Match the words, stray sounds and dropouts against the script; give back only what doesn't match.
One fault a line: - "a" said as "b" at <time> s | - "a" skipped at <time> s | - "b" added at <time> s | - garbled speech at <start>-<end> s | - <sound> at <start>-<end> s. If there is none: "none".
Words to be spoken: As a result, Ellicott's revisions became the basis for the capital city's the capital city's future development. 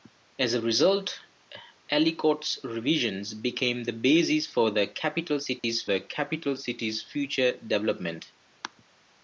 - dropout at 5.6-5.6 s